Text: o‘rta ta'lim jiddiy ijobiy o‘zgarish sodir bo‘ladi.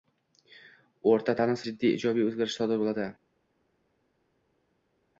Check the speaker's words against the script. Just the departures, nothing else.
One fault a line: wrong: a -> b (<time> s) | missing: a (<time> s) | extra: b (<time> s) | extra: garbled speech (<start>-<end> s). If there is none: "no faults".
no faults